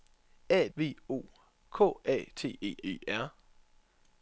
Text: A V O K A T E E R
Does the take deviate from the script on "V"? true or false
false